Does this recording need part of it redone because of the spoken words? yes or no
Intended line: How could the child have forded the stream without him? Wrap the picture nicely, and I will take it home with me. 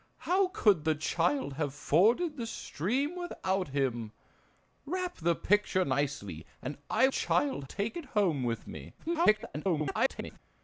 yes